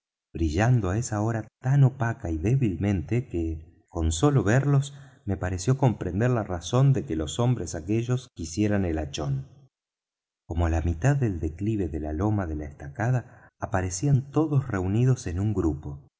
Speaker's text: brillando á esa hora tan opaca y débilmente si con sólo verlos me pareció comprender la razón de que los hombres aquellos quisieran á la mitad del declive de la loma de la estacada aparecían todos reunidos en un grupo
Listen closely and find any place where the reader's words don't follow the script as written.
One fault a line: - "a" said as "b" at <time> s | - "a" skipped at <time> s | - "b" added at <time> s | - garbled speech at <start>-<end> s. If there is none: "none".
- "si" said as "que" at 3.3 s
- "el hachón como" added at 8.8 s